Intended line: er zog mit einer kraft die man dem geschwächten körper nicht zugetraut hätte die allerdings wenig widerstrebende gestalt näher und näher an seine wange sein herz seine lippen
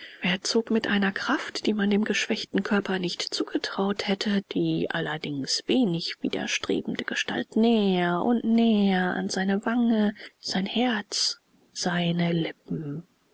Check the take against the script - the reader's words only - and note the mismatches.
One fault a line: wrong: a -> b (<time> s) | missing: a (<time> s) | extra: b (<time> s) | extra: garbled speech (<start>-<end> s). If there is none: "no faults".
no faults